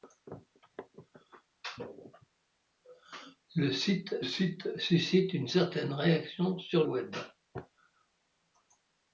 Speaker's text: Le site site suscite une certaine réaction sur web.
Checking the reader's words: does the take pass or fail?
pass